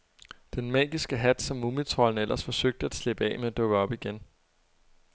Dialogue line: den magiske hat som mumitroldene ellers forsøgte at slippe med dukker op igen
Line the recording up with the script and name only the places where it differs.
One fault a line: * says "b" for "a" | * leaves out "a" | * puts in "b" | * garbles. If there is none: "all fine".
* puts in "af"